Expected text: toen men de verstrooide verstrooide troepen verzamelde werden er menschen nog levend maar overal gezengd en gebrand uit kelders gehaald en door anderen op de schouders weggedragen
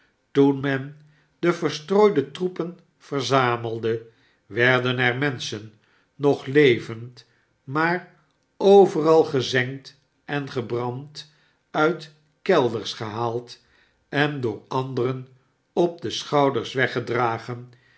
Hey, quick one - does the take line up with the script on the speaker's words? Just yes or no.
no